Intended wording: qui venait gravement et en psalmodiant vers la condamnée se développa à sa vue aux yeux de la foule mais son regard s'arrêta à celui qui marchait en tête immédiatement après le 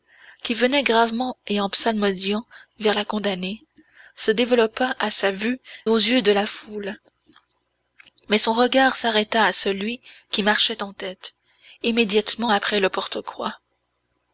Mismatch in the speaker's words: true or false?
false